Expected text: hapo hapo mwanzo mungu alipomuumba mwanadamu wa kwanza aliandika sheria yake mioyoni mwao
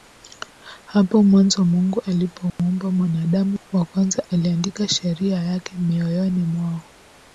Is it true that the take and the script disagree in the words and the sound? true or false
true